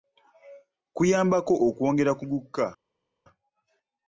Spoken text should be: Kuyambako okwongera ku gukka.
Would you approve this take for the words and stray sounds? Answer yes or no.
yes